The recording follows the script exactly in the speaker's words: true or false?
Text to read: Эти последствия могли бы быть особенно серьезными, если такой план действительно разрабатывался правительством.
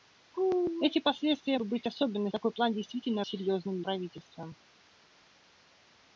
false